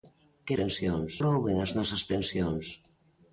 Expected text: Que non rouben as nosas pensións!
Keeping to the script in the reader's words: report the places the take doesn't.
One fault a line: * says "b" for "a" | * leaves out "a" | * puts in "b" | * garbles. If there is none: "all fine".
* says "pensións" for "non"